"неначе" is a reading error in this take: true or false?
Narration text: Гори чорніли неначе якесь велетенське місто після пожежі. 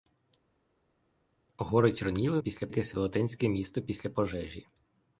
true